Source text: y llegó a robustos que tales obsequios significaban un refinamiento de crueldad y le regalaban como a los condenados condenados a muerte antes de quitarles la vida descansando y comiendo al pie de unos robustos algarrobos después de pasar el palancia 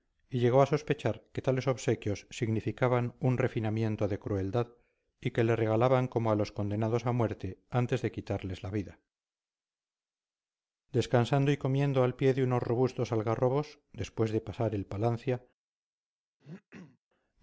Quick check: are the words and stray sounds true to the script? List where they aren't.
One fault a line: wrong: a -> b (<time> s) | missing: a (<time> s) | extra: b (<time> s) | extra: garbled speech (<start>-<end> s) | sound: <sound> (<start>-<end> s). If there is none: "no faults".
wrong: robustos -> sospechar (0.7 s)
extra: que (5.3 s)
missing: condenados (7.0 s)
sound: throat clearing (16.4-17.0 s)